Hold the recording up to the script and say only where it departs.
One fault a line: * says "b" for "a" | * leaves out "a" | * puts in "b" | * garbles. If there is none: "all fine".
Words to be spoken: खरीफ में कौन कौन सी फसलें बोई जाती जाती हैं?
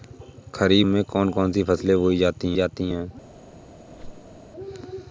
all fine